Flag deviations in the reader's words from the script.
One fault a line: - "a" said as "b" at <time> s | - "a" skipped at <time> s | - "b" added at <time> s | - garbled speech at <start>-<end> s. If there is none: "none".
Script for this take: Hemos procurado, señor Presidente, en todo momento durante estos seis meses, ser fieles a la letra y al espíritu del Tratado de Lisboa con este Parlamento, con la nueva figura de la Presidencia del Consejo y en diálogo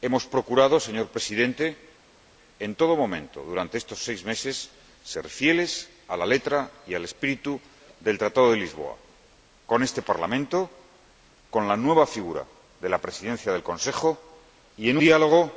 none